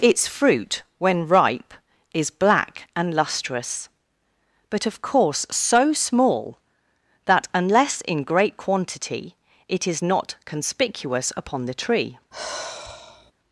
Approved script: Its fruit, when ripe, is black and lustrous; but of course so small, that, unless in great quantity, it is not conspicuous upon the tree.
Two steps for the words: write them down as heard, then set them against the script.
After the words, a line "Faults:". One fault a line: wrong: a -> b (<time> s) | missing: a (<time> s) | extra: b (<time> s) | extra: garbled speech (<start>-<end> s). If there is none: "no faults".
Its fruit, when ripe, is black and lustrous; but of course so small, that, unless in great quantity, it is not conspicuous upon the tree.
Faults:
no faults